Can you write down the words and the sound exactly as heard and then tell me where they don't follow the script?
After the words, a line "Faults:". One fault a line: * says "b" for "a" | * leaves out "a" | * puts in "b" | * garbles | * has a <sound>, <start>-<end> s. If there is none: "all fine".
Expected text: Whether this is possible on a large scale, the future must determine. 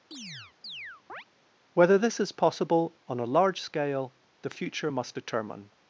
Whether this is possible on a large scale, the future must determine.
Faults:
* has a chirp, 0.1-1.2 s